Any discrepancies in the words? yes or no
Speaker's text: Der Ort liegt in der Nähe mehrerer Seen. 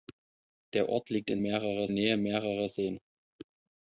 yes